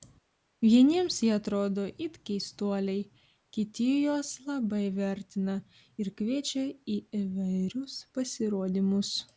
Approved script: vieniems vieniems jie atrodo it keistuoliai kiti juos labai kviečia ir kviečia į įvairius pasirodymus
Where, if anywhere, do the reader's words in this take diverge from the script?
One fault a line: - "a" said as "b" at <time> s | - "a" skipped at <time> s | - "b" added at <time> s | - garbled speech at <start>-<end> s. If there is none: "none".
- "vieniems" skipped at 1.2 s
- "kviečia" said as "vertina" at 5.0 s